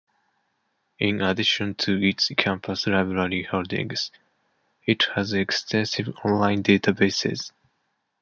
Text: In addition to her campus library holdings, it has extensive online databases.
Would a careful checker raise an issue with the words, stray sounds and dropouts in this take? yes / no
yes